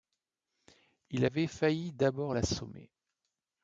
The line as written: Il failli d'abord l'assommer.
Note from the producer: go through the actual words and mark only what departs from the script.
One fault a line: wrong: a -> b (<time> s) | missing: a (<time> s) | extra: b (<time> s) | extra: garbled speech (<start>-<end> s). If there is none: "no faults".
extra: avait (1.2 s)